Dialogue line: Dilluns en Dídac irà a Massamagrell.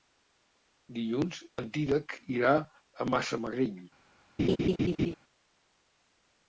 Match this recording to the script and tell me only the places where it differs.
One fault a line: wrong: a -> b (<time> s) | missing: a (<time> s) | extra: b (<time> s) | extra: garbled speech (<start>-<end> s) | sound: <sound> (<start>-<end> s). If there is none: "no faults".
sound: laugh (4.4-5.1 s)